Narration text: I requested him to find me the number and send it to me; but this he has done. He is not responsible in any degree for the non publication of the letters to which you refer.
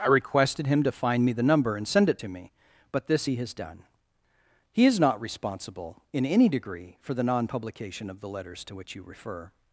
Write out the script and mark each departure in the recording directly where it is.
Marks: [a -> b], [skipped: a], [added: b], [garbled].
I requested him to find me the number and send it to me; but this he has done. He is not responsible in any degree for the non publication of the letters to which you refer.